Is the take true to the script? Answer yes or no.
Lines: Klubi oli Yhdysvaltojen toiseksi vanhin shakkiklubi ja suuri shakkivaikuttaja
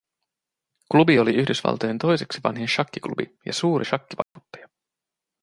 yes